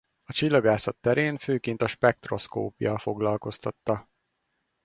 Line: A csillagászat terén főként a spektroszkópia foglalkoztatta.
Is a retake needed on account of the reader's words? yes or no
no